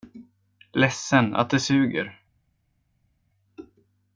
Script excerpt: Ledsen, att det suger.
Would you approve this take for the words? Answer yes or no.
yes